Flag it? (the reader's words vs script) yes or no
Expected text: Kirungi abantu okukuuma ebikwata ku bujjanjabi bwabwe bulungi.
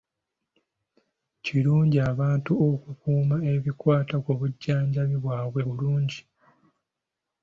no